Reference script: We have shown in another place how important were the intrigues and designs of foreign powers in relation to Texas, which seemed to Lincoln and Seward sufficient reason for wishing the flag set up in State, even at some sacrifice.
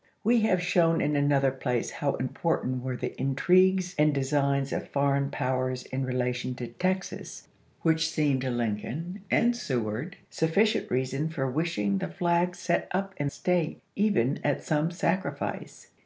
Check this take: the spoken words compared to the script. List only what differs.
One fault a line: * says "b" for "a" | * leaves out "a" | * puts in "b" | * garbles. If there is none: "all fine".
all fine